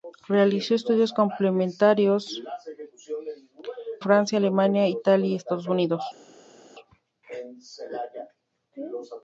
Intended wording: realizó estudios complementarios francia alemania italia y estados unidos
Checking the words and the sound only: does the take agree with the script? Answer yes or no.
yes